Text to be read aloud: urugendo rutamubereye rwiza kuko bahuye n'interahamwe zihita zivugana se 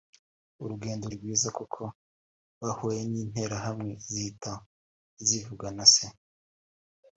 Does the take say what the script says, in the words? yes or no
no